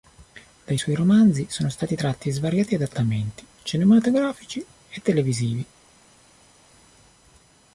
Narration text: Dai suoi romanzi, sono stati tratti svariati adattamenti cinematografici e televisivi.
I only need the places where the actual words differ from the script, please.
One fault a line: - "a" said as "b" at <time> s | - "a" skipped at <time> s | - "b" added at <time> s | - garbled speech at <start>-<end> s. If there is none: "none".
none